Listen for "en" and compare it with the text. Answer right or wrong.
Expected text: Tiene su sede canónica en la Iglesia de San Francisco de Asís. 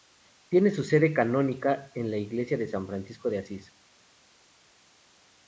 right